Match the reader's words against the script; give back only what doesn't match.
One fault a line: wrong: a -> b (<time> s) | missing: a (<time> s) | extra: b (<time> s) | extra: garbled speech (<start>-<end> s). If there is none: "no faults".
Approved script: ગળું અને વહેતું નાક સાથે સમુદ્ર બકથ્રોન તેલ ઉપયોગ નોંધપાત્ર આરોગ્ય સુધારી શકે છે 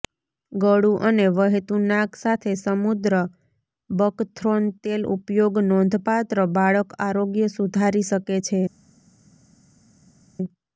extra: બાળક (6.5 s)